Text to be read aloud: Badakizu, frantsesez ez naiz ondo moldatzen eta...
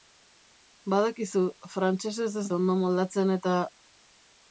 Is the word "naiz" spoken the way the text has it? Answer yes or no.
no